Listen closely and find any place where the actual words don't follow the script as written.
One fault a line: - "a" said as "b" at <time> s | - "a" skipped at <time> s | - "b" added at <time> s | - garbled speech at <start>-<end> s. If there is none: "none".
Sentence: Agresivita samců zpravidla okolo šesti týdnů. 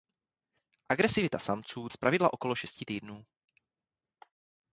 none